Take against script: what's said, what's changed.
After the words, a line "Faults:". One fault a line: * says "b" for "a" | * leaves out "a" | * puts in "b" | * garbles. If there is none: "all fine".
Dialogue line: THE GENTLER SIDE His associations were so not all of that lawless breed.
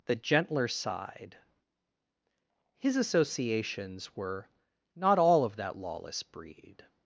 THE GENTLER SIDE His associations were not all of that lawless breed.
Faults:
* leaves out "so"